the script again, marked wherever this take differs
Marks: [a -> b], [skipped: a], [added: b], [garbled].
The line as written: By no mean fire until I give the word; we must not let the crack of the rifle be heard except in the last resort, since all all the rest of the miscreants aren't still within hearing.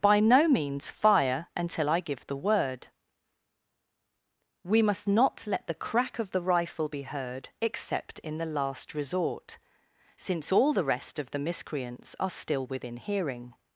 By no [mean -> means] fire until I give the word; we must not let the crack of the rifle be heard except in the last resort, since all [skipped: all] the rest of the miscreants [aren't -> are] still within hearing.